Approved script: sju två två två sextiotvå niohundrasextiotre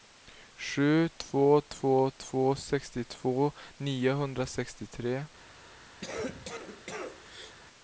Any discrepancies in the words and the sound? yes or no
yes